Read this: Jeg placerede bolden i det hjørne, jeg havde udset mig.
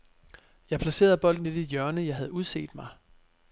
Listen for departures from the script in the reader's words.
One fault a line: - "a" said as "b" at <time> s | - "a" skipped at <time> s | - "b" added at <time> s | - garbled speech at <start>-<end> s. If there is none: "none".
none